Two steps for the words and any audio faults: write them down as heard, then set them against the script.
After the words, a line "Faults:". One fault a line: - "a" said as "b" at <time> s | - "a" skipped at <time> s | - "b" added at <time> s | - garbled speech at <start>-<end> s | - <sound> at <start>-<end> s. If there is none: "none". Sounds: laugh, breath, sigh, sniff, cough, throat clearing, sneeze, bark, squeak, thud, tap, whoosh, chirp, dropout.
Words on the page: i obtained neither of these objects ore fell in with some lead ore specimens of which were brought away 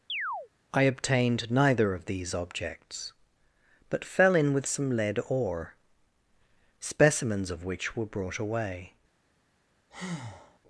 i obtained neither of these objects but fell in with some lead ore specimens of which were brought away
Faults:
- chirp at 0.1-0.5 s
- "ore" said as "but" at 3.9 s
- breath at 9.9-10.6 s